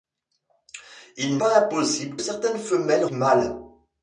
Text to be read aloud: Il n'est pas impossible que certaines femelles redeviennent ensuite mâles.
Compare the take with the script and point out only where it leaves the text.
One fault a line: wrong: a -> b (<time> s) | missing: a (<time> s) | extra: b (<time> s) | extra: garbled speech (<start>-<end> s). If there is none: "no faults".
missing: n'est (1.4 s)
missing: que (2.2 s)
missing: redeviennent ensuite (3.1 s)